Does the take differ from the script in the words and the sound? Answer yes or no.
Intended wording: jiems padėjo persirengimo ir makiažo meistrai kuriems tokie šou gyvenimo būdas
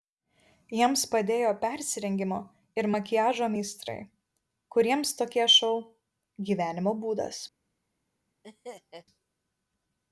yes